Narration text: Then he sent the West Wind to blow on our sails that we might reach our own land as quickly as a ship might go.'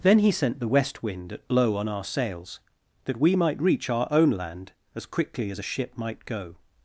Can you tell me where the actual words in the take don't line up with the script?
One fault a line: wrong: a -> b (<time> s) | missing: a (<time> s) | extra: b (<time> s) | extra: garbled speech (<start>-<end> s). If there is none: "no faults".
wrong: to -> at (1.3 s)